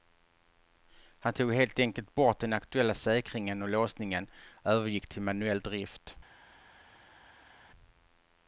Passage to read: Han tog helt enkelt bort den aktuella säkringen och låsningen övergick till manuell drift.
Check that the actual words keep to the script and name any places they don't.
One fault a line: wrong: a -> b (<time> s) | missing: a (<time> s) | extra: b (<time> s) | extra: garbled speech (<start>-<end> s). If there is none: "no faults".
no faults